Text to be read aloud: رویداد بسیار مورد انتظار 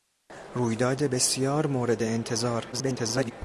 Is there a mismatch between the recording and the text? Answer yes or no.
yes